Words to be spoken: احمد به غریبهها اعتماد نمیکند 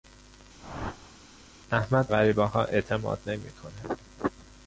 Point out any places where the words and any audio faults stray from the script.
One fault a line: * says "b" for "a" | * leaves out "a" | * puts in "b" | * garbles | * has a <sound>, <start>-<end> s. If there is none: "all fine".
* has a whoosh, 0.6-1.2 s
* leaves out "به"